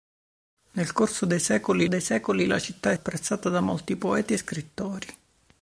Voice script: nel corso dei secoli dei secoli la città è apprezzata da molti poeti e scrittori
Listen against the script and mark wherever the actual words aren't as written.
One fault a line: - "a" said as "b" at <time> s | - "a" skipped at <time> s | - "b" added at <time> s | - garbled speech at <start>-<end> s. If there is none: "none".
none